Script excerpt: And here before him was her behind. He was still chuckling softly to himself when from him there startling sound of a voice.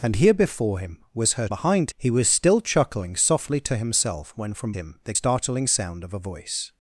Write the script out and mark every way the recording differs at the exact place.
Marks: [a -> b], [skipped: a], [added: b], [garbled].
And here before him was her behind. He was still chuckling softly to himself when from him there startling sound of a voice.